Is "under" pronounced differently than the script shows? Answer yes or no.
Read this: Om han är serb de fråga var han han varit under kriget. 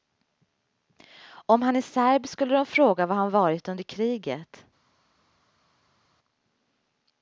no